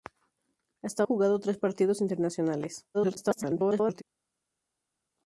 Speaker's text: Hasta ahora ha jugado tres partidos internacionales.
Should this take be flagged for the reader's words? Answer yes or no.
yes